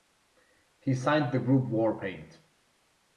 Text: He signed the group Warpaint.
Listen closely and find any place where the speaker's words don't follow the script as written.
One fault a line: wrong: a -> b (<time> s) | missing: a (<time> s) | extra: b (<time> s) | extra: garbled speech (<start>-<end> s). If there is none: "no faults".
no faults